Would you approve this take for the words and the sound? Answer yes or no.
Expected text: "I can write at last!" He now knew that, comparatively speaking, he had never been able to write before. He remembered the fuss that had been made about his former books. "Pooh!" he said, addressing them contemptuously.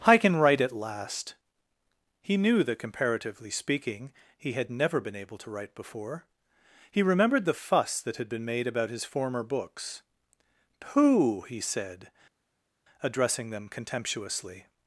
no